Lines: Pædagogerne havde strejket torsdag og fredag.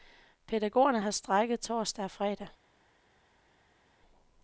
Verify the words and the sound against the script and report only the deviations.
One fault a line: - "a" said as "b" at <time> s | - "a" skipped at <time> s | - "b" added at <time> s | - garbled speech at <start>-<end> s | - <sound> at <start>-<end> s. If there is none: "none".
- "havde" said as "har" at 1.0 s